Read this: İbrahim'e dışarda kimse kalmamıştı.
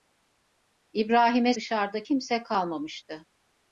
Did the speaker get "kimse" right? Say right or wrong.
right